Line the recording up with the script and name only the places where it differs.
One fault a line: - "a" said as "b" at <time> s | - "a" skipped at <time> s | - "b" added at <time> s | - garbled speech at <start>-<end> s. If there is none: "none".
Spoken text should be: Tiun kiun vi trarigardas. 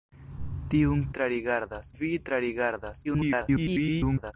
- "kiun" said as "trarigardas" at 1.2 s
- garbled speech at 3.0-4.3 s